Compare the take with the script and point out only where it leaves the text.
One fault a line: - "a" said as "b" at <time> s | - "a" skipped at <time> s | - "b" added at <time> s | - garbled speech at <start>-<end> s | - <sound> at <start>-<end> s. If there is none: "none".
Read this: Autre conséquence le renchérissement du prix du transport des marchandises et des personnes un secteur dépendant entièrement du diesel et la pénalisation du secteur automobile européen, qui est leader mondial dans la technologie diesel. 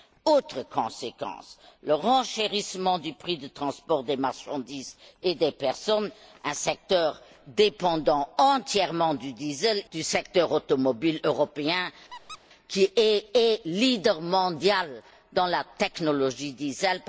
- "et la pénalisation" skipped at 9.8 s
- squeak at 12.1-12.4 s
- "est" added at 13.3 s